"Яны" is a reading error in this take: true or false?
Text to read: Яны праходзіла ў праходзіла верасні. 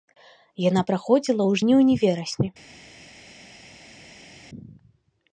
true